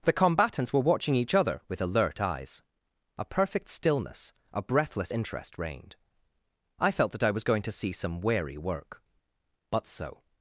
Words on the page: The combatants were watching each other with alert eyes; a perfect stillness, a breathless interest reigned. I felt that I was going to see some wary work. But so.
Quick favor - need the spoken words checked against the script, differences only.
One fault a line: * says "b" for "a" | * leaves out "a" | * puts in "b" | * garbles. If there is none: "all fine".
all fine